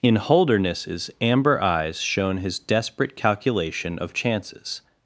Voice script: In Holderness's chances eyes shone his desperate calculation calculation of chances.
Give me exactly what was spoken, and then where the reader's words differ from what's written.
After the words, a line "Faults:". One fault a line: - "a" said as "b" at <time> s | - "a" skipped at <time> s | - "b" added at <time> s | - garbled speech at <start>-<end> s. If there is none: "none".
In Holderness's amber eyes shone his desperate calculation of chances.
Faults:
- "chances" said as "amber" at 1.2 s
- "calculation" skipped at 4.0 s